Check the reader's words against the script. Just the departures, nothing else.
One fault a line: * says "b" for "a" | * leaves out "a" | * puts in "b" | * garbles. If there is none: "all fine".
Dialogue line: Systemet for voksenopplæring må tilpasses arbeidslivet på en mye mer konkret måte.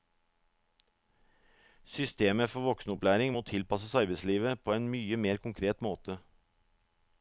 all fine